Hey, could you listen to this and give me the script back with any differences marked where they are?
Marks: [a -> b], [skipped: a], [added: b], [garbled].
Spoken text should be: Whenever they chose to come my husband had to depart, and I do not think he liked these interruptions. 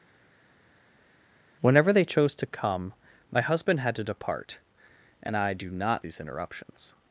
Whenever they chose to come my husband had to depart, and I do not [skipped: think he liked] these interruptions.